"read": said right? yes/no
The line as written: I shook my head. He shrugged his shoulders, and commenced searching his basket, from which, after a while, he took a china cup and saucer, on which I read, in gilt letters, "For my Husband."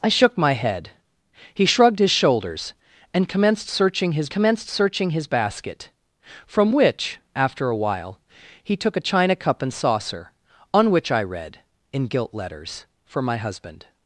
yes